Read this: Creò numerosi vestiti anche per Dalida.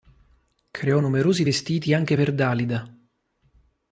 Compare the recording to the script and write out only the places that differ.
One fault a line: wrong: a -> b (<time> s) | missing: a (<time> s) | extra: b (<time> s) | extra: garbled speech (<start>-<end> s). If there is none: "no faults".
no faults